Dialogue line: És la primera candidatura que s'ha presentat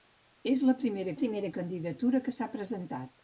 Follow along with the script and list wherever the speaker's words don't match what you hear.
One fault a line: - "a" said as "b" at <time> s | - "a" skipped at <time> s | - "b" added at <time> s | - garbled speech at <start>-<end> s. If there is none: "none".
- "primera" added at 1.2 s